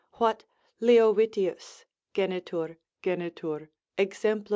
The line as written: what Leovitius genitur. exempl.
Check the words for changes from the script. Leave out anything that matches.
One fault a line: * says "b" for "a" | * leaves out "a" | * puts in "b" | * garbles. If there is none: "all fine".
* puts in "genitur"